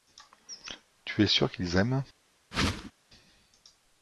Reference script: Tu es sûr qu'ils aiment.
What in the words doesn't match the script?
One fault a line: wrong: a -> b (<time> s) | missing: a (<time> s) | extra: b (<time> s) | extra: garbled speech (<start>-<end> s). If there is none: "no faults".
no faults